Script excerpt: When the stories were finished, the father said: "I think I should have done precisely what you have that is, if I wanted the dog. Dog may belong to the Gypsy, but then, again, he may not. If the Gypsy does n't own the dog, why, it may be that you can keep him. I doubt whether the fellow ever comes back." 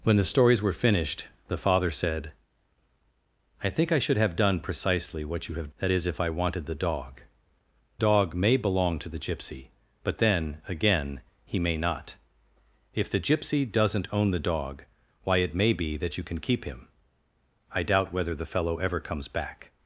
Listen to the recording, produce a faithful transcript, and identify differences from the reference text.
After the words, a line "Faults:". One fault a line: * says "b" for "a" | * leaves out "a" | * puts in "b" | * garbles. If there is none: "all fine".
When the stories were finished, the father said: "I think I should have done precisely what you have that is, if I wanted the dog. Dog may belong to the Gypsy, but then, again, he may not. If the Gypsy does n't own the dog, why, it may be that you can keep him. I doubt whether the fellow ever comes back."
Faults:
all fine